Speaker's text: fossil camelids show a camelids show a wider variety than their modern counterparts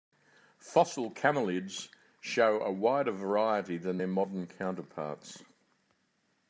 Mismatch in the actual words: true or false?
true